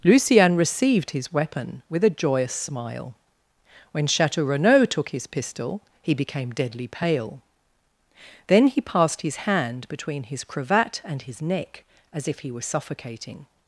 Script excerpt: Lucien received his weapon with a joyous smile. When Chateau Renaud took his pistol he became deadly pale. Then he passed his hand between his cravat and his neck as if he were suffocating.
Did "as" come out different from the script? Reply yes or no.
no